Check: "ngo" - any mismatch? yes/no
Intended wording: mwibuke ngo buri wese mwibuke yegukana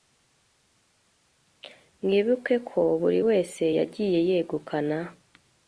yes